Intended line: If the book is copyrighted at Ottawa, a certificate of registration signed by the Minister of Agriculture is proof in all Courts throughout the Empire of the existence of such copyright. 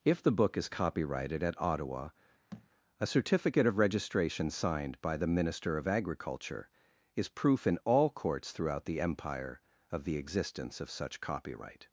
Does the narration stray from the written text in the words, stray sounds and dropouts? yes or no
yes